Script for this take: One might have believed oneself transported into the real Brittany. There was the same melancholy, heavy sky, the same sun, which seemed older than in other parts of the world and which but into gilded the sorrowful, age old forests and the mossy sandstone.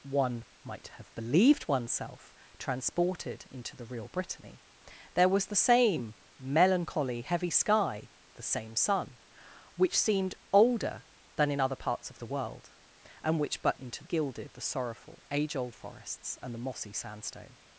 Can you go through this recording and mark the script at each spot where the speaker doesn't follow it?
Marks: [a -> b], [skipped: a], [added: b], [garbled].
One might have believed oneself transported into the real Brittany. There was the same melancholy, heavy sky, the same sun, which seemed older than in other parts of the world and which but into gilded the sorrowful, age old forests and the mossy sandstone.